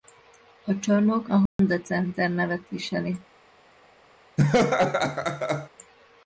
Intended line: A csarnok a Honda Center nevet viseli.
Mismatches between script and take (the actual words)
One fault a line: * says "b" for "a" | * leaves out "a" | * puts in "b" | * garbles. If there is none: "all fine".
all fine